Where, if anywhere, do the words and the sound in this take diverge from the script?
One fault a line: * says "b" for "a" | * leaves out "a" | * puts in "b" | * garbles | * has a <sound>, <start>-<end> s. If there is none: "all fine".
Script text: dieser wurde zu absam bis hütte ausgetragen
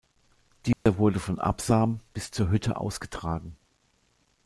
* has a dropout, 0.7-0.9 s
* says "von" for "zu"
* puts in "zur"